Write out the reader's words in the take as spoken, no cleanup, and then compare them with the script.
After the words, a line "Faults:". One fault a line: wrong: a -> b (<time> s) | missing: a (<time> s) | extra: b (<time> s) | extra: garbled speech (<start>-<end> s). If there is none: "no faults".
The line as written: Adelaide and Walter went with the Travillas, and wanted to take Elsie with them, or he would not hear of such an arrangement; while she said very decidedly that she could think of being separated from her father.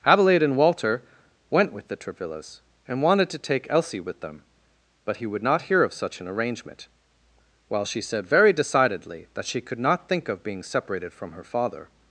Adelaide and Walter went with the Travillas, and wanted to take Elsie with them, but he would not hear of such an arrangement; while she said very decidedly that she could not think of being separated from her father.
Faults:
wrong: or -> but (5.0 s)
extra: not (9.8 s)